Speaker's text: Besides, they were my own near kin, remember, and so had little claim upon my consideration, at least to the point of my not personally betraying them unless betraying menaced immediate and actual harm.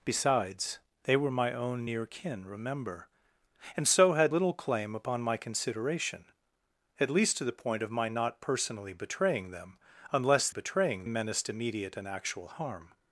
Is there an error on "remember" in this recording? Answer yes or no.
no